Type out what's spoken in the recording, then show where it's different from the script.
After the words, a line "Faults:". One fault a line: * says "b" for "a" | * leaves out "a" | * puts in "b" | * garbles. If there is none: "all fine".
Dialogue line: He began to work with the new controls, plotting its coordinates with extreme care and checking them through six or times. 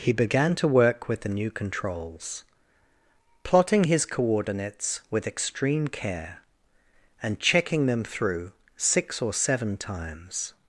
He began to work with the new controls, plotting his coordinates with extreme care and checking them through six or seven times.
Faults:
* says "his" for "its"
* puts in "seven"